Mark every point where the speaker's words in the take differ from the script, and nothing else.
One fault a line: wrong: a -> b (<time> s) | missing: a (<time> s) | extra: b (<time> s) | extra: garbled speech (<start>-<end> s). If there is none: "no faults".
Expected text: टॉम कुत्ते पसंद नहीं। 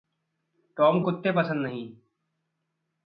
no faults